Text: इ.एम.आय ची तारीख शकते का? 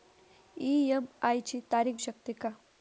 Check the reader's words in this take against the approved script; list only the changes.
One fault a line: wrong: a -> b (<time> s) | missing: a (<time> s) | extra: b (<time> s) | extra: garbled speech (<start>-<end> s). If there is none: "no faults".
no faults